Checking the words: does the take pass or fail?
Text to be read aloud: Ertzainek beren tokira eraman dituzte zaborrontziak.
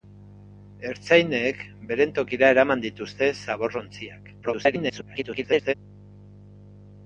fail